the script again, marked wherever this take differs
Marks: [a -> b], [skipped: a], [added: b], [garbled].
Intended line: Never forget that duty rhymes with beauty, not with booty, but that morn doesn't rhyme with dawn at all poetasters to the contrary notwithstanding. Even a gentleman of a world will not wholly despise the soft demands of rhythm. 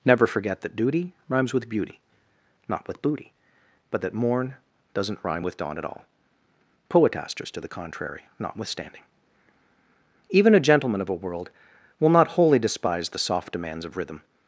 Never forget that duty rhymes with beauty, not with booty, but that morn doesn't rhyme with dawn at all poetasters to the contrary notwithstanding. Even a gentleman of a world will not wholly despise the soft demands of rhythm.